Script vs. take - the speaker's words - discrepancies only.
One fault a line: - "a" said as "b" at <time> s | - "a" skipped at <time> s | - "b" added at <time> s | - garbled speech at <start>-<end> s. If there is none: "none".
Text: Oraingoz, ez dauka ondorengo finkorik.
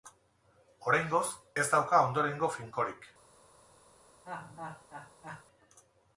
none